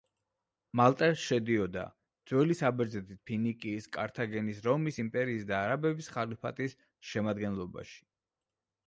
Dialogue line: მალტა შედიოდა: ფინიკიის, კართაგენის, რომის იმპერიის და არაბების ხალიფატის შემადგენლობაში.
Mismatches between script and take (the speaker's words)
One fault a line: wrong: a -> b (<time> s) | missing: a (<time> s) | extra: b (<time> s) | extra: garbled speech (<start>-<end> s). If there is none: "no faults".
extra: ძველი საბერძნეთის (2.3 s)